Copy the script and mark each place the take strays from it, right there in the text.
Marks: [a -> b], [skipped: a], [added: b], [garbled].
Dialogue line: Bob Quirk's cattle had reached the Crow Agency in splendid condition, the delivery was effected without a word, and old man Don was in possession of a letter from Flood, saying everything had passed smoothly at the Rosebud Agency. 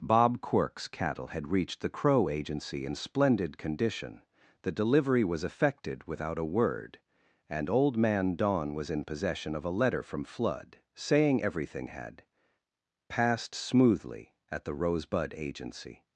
Bob Quirk's cattle had reached the Crow Agency in splendid condition, the delivery was effected without a word, and old man Don was in possession of a letter from Flood, saying everything had passed smoothly at the Rosebud Agency.